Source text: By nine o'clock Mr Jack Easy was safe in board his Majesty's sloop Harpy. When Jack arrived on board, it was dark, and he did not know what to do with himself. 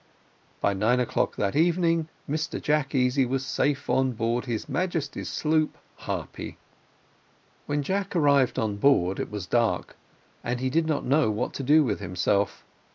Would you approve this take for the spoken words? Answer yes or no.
no